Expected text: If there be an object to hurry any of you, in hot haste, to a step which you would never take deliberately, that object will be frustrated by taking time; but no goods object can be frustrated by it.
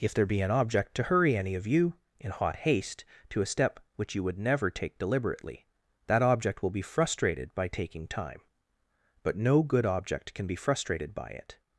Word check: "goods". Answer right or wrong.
wrong